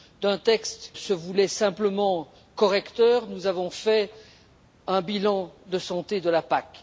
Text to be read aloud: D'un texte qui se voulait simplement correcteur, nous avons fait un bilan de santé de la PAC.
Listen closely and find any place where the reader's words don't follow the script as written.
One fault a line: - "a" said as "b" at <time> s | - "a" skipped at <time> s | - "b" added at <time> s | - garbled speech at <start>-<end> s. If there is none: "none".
- "qui" skipped at 0.9 s